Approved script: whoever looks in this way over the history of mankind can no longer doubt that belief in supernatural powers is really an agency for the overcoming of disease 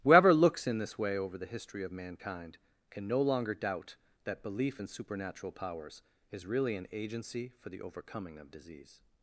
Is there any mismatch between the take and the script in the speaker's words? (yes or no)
no